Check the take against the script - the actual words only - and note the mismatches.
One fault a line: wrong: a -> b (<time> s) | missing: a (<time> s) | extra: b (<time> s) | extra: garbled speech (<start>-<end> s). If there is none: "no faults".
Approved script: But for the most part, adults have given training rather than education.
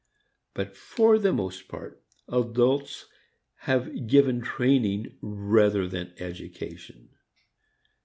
no faults